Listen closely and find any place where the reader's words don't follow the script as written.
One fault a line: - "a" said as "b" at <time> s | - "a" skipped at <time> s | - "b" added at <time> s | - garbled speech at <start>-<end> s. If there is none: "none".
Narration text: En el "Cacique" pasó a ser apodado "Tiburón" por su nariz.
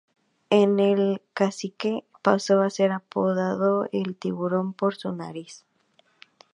- "El" added at 3.9 s